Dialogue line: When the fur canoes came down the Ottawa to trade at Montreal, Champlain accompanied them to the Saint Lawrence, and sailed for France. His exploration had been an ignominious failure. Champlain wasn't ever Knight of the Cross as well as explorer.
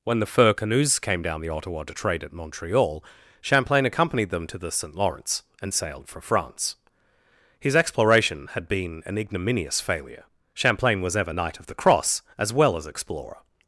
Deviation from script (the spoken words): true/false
true